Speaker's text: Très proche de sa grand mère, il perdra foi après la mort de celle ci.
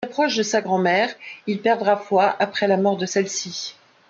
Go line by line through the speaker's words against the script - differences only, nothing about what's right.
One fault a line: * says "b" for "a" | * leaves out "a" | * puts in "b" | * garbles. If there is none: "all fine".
all fine